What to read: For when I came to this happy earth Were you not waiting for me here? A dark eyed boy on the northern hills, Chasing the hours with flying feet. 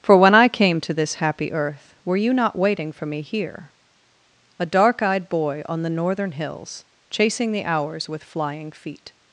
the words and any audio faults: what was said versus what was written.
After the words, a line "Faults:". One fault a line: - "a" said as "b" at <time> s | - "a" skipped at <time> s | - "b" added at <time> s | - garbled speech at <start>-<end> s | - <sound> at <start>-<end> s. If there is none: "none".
For when I came to this happy earth Were you not waiting for me here? A dark eyed boy on the northern hills, Chasing the hours with flying feet.
Faults:
none